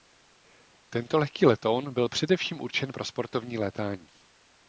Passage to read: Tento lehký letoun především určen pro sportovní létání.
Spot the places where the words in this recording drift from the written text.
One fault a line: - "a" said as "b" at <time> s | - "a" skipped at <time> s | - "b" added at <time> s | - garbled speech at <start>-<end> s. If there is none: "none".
- "byl" added at 1.9 s